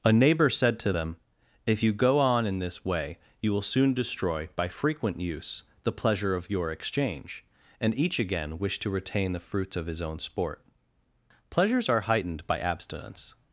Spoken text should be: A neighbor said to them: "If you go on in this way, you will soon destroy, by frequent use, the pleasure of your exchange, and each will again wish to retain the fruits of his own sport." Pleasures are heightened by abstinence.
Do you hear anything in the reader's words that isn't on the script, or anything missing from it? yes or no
yes